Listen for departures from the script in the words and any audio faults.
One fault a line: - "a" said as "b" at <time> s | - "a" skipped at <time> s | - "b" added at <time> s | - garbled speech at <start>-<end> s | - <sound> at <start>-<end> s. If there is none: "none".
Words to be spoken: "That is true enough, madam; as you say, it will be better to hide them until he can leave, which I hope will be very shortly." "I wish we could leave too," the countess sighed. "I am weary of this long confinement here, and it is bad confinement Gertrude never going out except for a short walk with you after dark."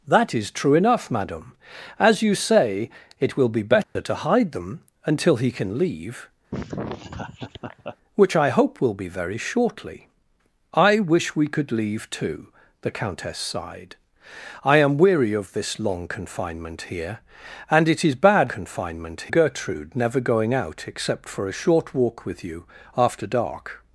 - dropout at 3.8-4.0 s
- laugh at 6.5-8.0 s